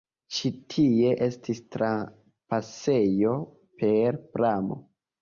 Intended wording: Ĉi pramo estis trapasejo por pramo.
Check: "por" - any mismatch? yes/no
yes